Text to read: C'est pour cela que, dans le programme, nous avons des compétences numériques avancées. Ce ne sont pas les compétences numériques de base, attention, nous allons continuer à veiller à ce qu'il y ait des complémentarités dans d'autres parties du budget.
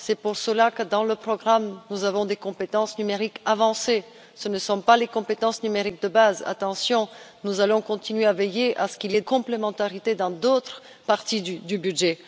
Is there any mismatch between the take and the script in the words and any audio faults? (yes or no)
yes